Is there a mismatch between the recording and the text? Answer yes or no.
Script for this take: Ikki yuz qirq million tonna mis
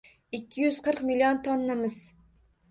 no